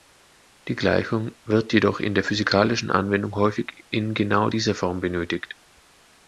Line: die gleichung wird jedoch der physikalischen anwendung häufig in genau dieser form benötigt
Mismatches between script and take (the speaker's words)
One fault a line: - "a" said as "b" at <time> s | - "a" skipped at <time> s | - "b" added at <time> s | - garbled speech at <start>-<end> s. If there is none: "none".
- "in" added at 2.0 s